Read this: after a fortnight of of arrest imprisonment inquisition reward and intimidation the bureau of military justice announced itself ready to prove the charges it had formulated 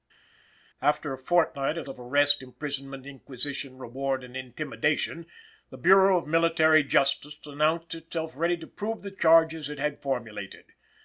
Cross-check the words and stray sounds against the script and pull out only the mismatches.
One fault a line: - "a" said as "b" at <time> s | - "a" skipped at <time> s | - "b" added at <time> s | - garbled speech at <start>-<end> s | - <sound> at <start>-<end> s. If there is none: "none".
none